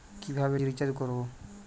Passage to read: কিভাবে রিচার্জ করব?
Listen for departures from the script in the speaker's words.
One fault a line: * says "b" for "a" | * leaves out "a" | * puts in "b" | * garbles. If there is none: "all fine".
all fine